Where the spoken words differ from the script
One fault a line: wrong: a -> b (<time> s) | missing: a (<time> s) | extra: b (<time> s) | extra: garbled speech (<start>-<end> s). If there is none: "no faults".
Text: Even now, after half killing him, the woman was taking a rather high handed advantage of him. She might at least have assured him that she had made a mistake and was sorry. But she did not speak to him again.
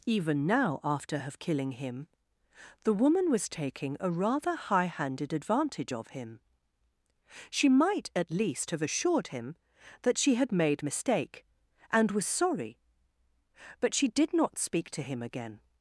wrong: half -> have (1.2 s)
missing: a (10.9 s)